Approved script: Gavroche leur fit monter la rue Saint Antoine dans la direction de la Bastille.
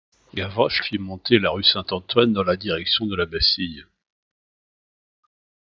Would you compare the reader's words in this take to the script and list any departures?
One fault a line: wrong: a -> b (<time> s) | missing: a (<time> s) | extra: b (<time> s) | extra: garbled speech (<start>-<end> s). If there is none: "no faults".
missing: leur (0.8 s)